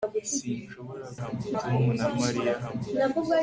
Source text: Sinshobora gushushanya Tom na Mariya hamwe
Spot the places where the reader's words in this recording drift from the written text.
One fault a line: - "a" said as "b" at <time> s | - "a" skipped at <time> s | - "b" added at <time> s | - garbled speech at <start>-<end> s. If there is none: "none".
- "gushushanya" said as "hamwe" at 1.2 s